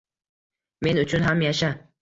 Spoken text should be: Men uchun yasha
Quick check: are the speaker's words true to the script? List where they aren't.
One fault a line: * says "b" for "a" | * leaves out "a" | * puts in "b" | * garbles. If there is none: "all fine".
* puts in "ham"